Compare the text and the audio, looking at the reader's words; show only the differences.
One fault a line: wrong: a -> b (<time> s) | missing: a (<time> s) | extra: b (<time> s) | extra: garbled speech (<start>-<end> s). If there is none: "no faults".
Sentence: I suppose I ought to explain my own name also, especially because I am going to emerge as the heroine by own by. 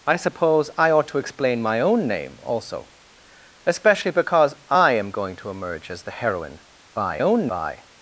no faults